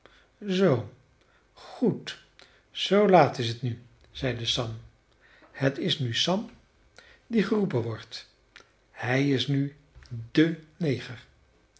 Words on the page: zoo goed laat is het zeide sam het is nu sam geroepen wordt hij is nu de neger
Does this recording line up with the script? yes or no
no